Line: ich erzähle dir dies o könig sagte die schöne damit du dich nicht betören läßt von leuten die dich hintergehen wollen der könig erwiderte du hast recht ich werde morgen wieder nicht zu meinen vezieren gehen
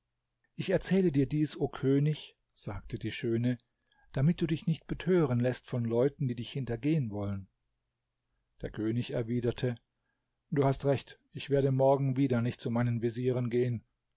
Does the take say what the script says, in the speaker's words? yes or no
yes